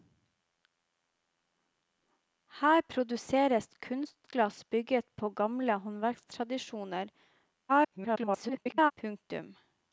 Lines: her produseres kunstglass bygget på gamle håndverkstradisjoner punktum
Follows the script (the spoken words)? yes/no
no